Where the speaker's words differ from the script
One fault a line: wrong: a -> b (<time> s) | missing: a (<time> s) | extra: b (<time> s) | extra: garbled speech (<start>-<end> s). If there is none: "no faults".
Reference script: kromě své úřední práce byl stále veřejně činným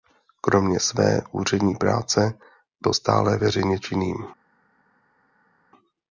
no faults